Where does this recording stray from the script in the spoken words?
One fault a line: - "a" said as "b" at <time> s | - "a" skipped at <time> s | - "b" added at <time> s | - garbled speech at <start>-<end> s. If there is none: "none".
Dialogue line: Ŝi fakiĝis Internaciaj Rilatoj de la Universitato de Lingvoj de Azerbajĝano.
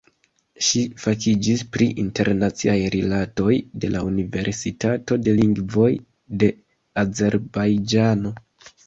- "pri" added at 1.8 s